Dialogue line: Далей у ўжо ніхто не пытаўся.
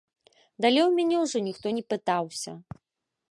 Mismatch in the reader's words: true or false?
true